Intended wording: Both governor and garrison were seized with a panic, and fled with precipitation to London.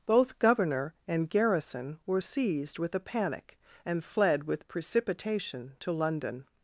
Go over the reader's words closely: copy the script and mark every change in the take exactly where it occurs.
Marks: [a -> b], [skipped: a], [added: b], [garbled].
Both governor and garrison were seized with a panic, and fled with precipitation to London.